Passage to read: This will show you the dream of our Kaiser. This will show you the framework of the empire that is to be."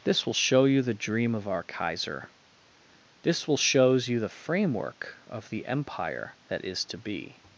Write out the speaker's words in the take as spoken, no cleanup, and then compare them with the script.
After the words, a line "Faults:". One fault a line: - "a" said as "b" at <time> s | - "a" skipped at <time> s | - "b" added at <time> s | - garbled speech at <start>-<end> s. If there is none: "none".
This will show you the dream of our Kaiser. This will shows you the framework of the empire that is to be."
Faults:
- "show" said as "shows" at 3.6 s